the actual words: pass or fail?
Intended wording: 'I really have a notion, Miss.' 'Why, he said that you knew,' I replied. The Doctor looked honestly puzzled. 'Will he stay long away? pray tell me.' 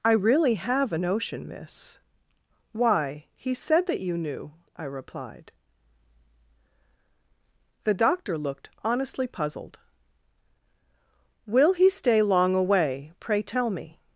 pass